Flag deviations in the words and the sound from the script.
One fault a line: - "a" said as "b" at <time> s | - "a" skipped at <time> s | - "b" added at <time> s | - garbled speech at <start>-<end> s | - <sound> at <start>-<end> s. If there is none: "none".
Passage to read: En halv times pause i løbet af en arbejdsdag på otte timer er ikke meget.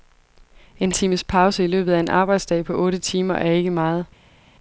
- "halv" skipped at 0.9 s